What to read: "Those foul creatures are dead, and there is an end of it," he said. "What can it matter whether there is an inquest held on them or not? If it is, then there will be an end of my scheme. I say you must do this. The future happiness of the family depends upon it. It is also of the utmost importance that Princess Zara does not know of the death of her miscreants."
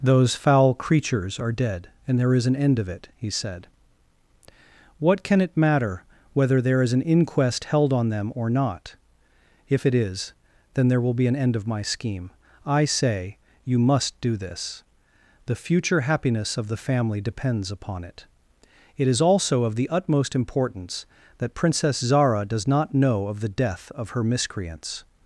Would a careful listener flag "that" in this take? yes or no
no